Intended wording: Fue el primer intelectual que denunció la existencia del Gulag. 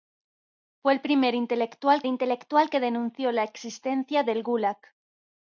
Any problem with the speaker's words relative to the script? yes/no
yes